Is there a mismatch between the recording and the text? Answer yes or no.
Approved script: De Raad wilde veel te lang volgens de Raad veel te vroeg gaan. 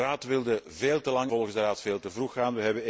no